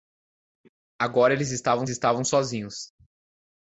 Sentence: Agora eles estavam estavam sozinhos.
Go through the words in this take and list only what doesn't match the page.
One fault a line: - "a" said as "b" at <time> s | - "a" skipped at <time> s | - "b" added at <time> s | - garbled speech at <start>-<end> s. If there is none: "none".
none